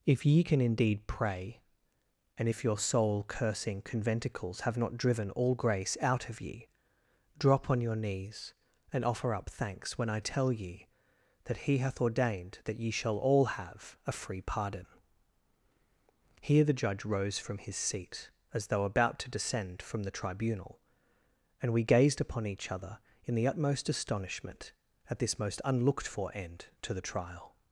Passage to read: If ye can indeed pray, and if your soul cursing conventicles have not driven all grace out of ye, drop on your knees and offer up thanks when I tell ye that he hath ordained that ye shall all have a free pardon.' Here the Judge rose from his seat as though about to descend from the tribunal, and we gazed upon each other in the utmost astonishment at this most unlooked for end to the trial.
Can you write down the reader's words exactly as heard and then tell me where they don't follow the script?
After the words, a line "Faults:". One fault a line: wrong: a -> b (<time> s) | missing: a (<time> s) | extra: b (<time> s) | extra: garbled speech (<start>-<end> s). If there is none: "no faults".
If ye can indeed pray, and if your soul cursing conventicles have not driven all grace out of ye, drop on your knees and offer up thanks when I tell ye that he hath ordained that ye shall all have a free pardon.' Here the Judge rose from his seat as though about to descend from the tribunal, and we gazed upon each other in the utmost astonishment at this most unlooked for end to the trial.
Faults:
no faults